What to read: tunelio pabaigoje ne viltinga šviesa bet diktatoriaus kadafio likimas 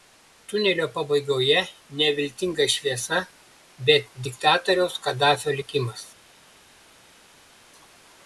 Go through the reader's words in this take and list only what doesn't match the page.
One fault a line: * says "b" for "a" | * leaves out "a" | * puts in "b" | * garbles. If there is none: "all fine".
all fine